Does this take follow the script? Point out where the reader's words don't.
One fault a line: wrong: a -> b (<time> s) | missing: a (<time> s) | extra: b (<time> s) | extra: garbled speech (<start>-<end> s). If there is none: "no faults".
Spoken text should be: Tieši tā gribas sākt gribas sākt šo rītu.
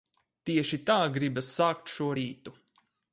missing: gribas sākt (1.9 s)